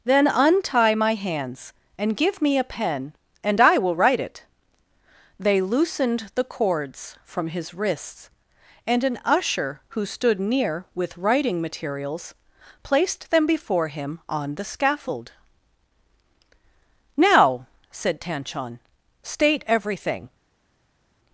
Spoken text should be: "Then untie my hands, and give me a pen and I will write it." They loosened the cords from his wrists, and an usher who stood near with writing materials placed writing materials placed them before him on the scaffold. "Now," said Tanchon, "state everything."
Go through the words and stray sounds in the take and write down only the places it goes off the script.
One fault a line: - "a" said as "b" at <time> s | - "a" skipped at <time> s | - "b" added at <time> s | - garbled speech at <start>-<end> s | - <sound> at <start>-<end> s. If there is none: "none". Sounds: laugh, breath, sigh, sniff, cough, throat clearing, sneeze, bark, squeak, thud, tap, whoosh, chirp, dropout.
- "writing materials placed" skipped at 13.3 s